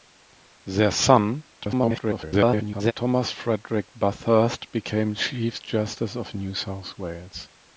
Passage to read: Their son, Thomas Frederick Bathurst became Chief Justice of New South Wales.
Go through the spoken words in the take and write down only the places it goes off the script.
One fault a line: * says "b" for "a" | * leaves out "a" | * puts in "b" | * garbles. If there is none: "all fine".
* garbles